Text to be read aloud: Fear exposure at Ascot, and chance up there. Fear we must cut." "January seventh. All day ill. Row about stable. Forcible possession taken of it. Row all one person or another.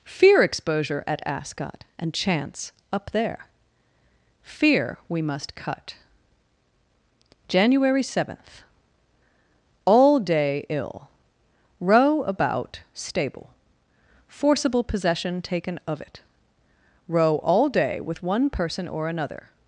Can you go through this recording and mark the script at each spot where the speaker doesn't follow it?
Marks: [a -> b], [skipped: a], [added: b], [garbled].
Fear exposure at Ascot, and chance up there. Fear we must cut." "January seventh. All day ill. Row about stable. Forcible possession taken of it. Row all [added: day with] one person or another.